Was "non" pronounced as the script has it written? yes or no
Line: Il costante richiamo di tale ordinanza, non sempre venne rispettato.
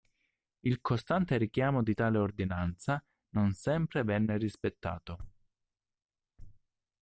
yes